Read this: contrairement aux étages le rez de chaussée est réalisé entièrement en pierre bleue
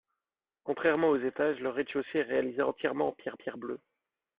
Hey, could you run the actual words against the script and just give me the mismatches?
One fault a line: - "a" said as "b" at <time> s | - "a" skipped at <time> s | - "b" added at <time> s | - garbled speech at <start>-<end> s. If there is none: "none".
- "pierre" added at 3.3 s